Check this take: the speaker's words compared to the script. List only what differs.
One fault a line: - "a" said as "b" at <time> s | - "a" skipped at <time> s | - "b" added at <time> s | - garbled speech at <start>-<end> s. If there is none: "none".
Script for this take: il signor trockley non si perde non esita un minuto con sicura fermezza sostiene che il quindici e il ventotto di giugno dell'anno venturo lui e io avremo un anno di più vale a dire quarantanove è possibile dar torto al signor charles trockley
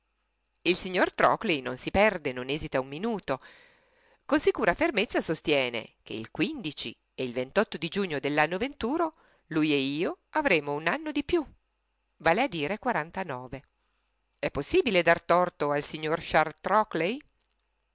none